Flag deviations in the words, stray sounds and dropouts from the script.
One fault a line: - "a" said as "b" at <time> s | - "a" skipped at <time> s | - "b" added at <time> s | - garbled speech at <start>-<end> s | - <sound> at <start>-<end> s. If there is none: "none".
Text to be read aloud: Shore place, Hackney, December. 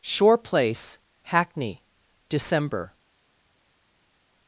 none